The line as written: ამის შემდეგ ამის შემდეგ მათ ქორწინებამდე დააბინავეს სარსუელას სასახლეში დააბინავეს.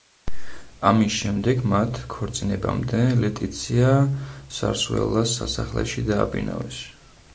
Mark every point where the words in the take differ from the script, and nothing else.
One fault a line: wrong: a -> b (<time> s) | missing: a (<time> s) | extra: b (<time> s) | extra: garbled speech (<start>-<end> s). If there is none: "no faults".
missing: ამის შემდეგ (1.6 s)
wrong: დააბინავეს -> ლეტიცია (3.2 s)